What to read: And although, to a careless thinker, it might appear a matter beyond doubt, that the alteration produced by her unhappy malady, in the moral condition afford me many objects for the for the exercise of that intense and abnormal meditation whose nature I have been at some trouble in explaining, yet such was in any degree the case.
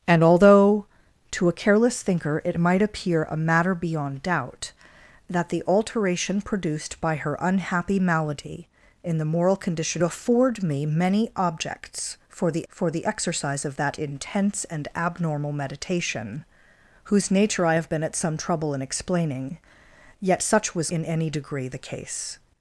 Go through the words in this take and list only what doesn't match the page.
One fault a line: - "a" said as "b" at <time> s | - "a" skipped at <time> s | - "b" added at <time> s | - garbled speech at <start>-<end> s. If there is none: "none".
none